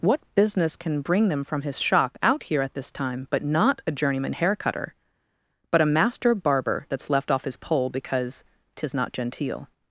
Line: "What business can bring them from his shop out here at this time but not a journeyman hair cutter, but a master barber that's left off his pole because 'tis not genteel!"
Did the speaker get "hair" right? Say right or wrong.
right